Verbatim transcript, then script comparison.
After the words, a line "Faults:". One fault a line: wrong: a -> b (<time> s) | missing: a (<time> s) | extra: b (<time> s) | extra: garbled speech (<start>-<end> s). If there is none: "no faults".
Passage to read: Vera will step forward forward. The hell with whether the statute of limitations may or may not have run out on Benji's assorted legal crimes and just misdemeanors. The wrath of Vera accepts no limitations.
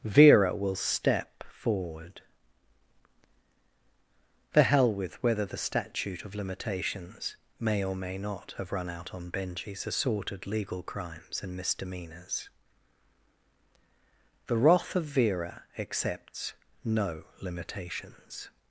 Vera will step forward. The hell with whether the statute of limitations may or may not have run out on Benji's assorted legal crimes and misdemeanors. The wrath of Vera accepts no limitations.
Faults:
missing: forward (2.2 s)
missing: just (11.6 s)